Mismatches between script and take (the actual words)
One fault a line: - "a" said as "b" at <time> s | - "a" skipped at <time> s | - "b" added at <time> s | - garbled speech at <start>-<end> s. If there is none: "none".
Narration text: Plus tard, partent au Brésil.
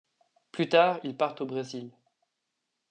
- "ils" added at 1.0 s